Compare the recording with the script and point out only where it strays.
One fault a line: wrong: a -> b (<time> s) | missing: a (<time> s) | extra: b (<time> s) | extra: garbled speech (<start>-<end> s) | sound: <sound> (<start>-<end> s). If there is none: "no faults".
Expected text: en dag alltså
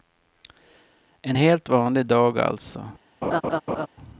extra: helt vanlig (1.3 s)
sound: laugh (3.2-3.9 s)